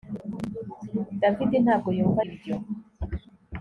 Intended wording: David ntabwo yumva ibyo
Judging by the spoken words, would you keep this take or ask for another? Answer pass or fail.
pass